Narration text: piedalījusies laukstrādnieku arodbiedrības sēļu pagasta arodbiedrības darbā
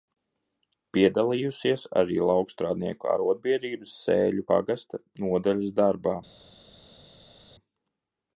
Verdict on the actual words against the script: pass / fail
fail